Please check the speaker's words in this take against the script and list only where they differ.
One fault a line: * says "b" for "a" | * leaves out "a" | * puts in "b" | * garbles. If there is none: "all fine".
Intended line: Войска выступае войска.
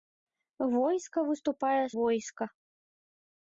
all fine